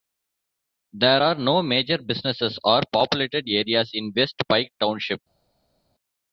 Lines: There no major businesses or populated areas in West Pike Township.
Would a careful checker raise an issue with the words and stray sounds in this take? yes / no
yes